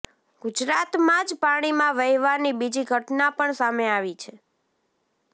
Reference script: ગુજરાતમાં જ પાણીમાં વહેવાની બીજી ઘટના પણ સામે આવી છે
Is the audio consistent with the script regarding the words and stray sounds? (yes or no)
yes